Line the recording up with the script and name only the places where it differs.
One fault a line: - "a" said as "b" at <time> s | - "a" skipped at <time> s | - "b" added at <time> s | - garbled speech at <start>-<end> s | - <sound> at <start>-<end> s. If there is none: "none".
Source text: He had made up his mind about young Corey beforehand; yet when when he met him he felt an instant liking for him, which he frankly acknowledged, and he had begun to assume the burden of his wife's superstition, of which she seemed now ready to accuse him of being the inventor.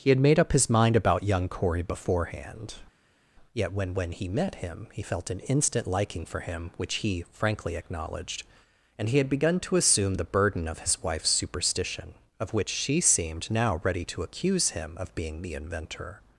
none